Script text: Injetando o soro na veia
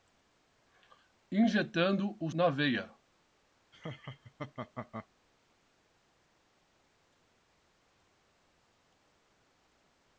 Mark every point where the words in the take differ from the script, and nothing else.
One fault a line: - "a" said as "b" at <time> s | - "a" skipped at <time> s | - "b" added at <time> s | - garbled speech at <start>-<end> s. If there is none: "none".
- "soro" skipped at 2.3 s